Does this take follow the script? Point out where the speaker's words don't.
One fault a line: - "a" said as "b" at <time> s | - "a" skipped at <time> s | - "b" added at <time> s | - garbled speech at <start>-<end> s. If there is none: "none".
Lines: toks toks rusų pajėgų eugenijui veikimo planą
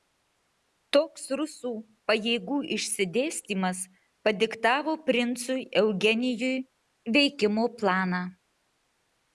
- "toks" skipped at 1.2 s
- "išsidėstymas padiktavo princui" added at 2.8 s